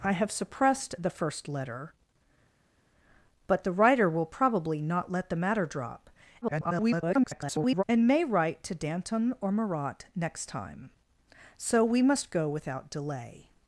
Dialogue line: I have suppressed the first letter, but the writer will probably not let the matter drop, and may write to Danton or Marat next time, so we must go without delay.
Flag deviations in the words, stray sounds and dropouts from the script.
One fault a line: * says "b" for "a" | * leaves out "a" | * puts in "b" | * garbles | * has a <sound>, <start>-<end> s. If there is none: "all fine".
* garbles